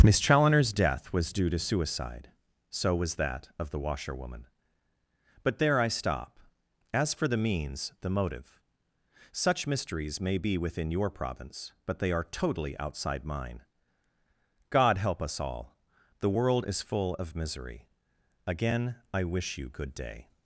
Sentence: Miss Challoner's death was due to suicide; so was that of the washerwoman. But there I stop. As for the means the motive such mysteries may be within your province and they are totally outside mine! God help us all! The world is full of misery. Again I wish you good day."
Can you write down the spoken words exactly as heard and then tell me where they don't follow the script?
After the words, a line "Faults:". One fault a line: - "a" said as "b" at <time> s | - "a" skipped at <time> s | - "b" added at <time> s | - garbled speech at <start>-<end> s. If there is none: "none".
Miss Challoner's death was due to suicide; so was that of the washerwoman. But there I stop. As for the means the motive such mysteries may be within your province but they are totally outside mine! God help us all! The world is full of misery. Again I wish you good day."
Faults:
- "and" said as "but" at 11.8 s